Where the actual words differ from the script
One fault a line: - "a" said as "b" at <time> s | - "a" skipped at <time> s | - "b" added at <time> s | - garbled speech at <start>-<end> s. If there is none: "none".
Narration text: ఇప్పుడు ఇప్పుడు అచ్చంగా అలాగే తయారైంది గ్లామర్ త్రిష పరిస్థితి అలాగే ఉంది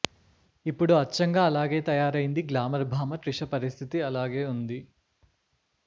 - "ఇప్పుడు" skipped at 0.9 s
- "భామ" added at 2.9 s